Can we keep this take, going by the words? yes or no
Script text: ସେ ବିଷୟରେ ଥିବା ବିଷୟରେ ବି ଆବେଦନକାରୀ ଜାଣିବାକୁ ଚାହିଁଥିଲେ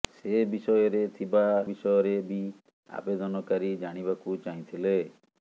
yes